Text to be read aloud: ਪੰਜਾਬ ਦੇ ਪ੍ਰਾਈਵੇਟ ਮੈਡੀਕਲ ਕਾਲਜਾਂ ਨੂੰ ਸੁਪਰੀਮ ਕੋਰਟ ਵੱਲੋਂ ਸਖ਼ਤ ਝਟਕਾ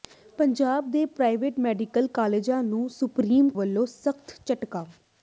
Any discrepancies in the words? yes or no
yes